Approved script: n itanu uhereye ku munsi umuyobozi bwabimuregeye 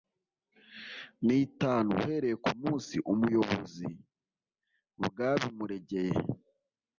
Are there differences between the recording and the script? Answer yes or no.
no